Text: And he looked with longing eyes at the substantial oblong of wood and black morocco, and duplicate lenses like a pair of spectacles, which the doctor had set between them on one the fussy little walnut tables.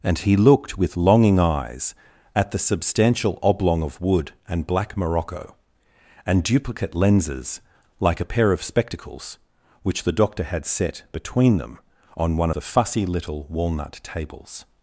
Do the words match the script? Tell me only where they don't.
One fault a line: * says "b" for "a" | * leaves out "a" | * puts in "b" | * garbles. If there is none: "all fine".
all fine